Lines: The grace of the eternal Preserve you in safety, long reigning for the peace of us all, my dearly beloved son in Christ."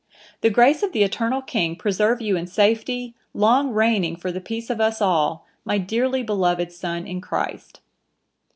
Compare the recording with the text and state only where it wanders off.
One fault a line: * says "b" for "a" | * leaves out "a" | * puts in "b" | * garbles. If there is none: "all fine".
* puts in "King"